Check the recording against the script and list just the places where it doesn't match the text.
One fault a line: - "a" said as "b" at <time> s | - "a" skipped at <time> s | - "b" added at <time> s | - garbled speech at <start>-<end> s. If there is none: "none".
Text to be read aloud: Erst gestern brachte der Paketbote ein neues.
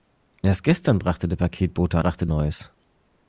- "ein" said as "brachte" at 2.0 s